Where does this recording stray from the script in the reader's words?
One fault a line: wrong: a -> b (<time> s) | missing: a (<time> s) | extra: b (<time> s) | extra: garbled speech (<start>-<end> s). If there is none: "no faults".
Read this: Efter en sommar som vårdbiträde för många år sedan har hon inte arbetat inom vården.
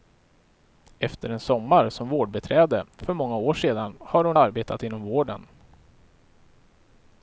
missing: inte (4.4 s)